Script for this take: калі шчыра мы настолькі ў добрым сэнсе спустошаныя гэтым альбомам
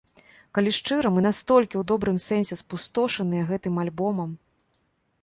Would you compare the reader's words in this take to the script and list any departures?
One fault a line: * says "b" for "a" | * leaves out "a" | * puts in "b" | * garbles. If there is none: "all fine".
all fine